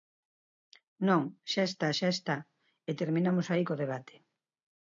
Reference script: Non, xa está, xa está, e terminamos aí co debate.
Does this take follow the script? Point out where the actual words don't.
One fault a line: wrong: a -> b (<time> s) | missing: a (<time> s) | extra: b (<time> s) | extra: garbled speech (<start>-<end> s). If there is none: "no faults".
no faults